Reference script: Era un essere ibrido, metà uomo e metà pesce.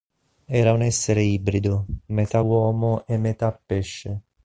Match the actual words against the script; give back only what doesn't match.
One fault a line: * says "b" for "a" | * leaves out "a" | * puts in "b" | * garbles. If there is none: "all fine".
all fine